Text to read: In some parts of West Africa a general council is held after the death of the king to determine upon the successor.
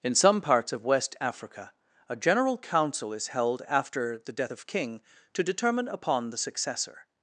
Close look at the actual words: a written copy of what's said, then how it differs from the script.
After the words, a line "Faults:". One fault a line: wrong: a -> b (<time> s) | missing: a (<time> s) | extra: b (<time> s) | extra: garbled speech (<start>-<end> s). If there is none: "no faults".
In some parts of West Africa a general council is held after the death of king to determine upon the successor.
Faults:
missing: the (4.6 s)